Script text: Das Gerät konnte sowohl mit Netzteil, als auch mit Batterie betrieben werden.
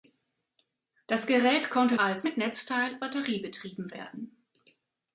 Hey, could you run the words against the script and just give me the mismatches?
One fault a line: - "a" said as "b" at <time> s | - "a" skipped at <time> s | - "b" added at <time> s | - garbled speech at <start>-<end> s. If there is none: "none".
- "sowohl" said as "als" at 2.0 s
- "als auch mit" skipped at 3.0 s